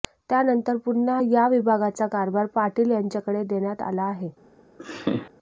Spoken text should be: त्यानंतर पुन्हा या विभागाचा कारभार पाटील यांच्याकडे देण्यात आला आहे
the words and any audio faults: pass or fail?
fail